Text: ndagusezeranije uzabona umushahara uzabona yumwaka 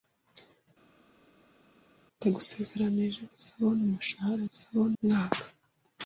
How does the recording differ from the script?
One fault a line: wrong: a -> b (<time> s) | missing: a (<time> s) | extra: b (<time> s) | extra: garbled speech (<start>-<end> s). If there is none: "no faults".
no faults